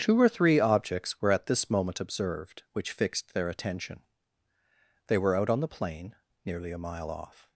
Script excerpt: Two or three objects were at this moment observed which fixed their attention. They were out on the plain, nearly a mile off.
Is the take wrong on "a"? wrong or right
right